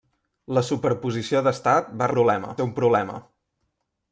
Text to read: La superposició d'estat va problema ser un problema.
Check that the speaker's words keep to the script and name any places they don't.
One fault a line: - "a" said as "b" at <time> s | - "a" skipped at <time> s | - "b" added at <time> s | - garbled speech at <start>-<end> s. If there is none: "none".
none